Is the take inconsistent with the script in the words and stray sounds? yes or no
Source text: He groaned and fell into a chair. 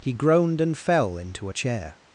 no